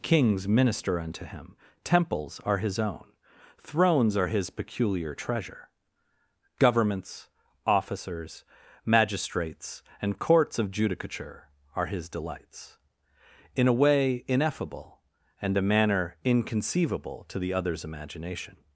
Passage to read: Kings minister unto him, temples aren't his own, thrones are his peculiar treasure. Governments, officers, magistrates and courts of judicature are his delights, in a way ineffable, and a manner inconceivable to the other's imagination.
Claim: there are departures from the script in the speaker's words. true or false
true